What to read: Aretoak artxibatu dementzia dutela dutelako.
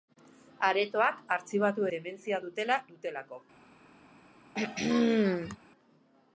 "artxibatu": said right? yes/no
yes